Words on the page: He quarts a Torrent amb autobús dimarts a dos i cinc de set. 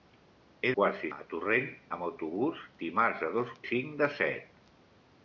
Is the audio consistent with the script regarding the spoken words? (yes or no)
yes